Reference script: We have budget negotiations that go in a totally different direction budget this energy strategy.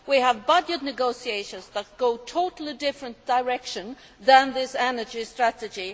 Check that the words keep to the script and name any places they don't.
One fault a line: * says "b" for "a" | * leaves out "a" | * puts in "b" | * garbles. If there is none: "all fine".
* says "from" for "budget"